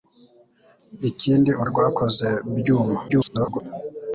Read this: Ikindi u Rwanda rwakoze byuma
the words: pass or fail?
fail